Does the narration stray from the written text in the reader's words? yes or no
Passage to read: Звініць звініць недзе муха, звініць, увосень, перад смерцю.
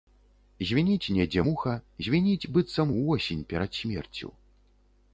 yes